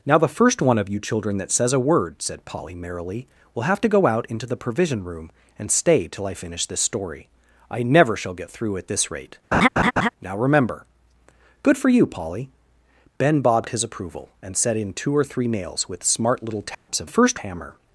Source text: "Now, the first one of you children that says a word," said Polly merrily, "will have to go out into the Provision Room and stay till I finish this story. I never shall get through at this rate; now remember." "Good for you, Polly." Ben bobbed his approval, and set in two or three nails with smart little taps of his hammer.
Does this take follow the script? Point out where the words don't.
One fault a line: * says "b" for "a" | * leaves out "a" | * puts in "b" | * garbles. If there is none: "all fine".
* says "first" for "his"